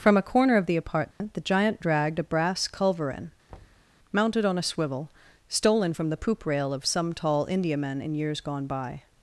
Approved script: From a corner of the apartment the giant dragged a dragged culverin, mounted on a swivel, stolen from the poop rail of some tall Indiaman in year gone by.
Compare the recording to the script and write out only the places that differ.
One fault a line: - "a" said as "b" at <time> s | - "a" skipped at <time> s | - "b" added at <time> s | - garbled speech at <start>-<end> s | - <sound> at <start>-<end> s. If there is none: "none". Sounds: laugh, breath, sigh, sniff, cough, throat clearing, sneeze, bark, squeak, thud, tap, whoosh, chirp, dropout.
- dropout at 1.1-1.2 s
- "dragged" said as "brass" at 2.2 s
- thud at 3.5-3.9 s
- "year" said as "years" at 8.2 s